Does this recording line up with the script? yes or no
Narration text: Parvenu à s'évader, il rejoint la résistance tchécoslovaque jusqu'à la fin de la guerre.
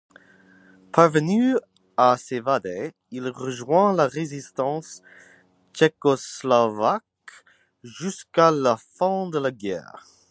yes